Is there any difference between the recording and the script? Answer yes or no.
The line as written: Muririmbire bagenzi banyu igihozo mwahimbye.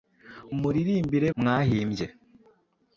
yes